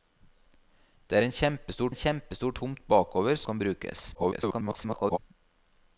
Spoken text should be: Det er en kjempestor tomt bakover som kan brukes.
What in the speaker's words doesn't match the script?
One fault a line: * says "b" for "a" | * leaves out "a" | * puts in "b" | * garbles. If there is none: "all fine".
* puts in "en kjempestor"
* leaves out "som"
* garbles